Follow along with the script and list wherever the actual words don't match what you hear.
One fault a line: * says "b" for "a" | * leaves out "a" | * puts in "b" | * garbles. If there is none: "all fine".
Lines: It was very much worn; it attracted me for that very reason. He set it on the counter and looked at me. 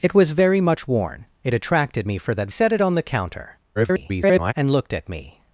* leaves out "very reason He"
* garbles